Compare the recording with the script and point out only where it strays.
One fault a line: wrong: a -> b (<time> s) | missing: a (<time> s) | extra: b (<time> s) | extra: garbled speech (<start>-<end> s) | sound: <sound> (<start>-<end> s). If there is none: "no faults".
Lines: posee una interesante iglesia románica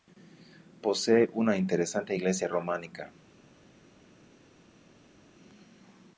no faults